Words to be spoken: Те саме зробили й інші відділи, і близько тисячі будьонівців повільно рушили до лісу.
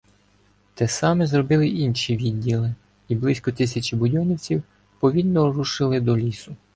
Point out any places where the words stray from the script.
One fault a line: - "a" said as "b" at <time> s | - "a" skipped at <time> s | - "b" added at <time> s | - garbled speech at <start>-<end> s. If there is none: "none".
none